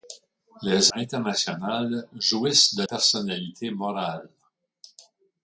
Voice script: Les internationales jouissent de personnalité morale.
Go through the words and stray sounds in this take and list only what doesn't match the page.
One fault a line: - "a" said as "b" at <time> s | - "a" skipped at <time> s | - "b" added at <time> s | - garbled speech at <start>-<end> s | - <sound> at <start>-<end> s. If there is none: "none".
none